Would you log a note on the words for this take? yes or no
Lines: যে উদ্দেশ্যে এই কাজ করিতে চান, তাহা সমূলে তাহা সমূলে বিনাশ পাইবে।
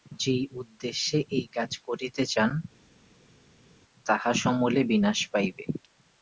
yes